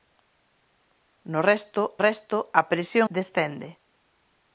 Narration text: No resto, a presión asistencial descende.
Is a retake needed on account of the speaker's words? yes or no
yes